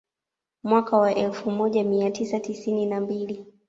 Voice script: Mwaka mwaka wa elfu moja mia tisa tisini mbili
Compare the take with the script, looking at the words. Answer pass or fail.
fail